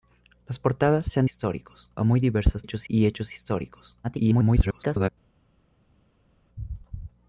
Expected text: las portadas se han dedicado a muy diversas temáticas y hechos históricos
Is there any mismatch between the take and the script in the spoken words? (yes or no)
yes